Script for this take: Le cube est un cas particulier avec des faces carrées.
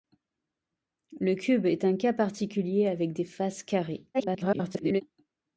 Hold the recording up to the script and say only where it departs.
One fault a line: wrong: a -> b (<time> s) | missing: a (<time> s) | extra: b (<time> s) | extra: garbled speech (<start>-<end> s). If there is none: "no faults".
extra: garbled speech (4.1-5.0 s)